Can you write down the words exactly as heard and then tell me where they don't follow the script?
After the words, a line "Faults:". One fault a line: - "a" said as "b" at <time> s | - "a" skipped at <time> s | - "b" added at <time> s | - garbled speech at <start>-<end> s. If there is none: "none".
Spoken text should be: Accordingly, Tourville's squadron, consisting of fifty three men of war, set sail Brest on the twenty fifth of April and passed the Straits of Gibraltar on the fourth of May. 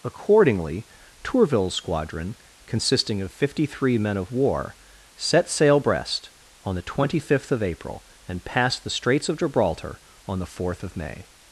Accordingly, Tourville's squadron, consisting of fifty three men of war, set sail Brest on the twenty fifth of April and passed the Straits of Gibraltar on the fourth of May.
Faults:
none